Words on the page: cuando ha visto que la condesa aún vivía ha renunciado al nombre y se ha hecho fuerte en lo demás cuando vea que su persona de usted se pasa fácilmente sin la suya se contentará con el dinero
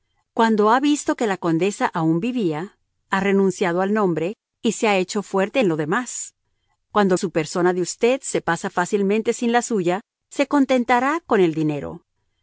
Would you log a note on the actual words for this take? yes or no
yes